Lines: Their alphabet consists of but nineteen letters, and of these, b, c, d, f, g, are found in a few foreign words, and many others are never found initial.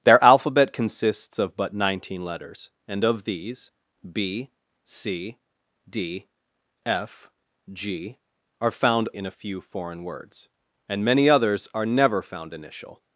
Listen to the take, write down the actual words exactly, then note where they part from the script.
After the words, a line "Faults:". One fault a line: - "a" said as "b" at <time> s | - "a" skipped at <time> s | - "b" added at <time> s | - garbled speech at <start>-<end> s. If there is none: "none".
Their alphabet consists of but nineteen letters, and of these, b, c, d, f, g, are found in a few foreign words, and many others are never found initial.
Faults:
none